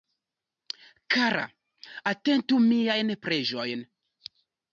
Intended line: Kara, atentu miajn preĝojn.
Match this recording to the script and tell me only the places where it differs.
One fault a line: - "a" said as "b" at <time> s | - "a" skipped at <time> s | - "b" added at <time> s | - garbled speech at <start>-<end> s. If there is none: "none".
none